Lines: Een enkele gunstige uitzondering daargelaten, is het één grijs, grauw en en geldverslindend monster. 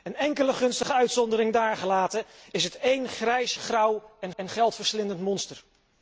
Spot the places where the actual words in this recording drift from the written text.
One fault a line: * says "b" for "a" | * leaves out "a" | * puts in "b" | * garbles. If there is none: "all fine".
all fine